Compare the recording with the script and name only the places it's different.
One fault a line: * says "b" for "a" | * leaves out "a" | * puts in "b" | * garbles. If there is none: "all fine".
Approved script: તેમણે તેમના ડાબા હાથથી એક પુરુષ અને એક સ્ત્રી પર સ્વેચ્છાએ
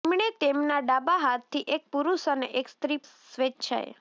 * leaves out "પર"